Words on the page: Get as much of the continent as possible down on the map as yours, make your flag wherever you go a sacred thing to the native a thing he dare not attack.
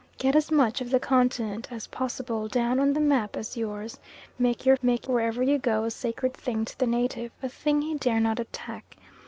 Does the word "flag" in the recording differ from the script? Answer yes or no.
yes